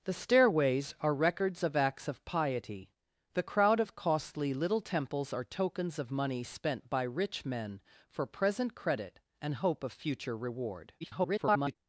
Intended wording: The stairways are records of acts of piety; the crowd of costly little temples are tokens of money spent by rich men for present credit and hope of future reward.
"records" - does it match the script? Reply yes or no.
yes